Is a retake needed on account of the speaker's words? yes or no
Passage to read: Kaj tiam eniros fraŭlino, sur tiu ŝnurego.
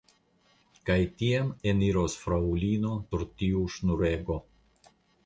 no